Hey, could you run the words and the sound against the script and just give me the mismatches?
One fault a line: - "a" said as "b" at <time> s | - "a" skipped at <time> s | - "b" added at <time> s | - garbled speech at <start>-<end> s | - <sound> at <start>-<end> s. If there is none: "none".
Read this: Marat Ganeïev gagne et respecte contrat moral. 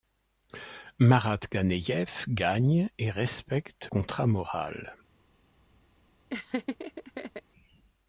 - laugh at 6.3-7.4 s